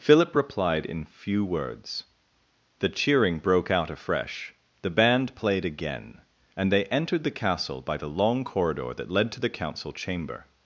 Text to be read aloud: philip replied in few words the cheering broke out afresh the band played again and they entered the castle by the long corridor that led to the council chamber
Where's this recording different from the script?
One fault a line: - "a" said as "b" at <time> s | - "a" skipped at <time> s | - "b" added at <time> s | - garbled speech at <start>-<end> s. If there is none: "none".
none